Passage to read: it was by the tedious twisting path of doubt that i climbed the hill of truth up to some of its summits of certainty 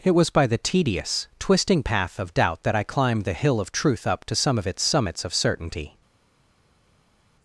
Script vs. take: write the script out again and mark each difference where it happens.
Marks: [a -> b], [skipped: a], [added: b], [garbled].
it was by the tedious twisting path of doubt that i climbed the hill of truth up to some of its summits of certainty